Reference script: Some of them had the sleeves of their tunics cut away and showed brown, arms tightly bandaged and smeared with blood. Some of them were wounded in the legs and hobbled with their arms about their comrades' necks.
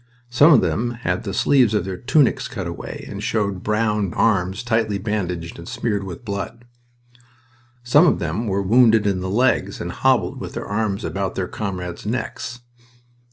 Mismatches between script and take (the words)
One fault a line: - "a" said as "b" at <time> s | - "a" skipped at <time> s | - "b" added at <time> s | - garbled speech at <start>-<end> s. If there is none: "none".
none